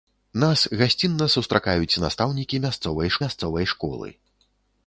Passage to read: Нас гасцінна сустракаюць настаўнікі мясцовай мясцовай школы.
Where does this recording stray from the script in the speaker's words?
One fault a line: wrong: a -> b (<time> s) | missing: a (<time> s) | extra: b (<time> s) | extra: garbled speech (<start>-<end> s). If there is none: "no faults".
no faults